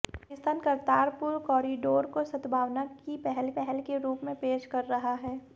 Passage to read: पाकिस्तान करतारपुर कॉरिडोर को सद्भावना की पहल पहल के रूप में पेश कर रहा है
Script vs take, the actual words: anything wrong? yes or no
no